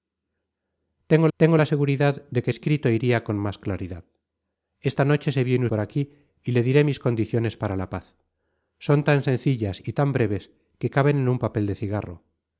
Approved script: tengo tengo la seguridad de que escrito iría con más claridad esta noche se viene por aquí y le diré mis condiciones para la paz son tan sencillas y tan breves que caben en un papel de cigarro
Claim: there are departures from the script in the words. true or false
false